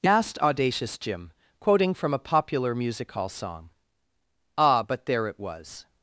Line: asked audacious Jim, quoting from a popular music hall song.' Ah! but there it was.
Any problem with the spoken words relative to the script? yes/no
no